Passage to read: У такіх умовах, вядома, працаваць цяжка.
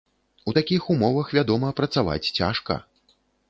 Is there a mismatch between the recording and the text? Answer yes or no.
no